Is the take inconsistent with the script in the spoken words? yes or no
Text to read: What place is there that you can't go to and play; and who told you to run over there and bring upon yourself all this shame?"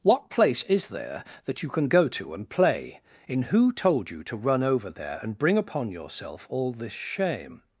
yes